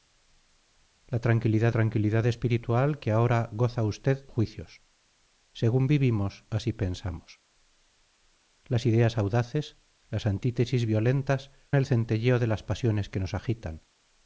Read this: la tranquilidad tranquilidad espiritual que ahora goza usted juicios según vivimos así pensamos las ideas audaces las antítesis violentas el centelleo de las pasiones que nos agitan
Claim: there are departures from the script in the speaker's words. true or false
false